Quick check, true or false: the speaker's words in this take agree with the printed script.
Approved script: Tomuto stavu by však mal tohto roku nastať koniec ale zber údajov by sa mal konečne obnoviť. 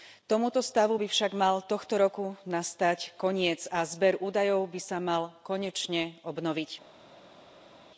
false